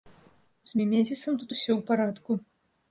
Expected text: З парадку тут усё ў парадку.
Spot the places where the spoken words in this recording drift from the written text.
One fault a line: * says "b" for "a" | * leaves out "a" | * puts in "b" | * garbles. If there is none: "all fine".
* says "мімезісам" for "парадку"